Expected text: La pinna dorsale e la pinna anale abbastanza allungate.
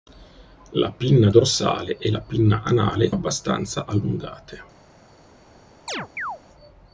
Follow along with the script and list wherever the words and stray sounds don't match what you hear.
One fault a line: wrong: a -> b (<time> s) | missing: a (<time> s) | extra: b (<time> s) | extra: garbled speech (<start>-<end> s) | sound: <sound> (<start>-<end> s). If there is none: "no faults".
sound: chirp (5.9-6.4 s)